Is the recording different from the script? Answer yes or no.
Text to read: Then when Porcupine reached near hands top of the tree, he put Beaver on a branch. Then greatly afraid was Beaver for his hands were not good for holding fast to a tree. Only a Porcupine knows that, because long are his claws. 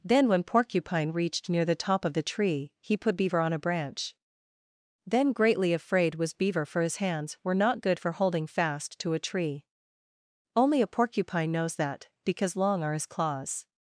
yes